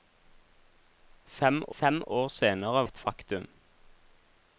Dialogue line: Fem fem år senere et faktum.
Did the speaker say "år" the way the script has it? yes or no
yes